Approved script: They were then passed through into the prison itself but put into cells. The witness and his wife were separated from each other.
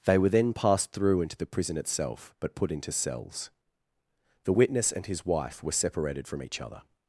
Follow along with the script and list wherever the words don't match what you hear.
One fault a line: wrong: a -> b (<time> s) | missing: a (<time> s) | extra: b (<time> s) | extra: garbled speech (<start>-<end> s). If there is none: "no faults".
no faults